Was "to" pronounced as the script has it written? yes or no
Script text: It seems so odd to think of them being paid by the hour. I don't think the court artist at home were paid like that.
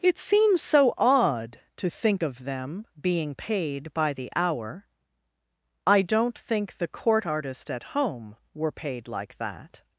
yes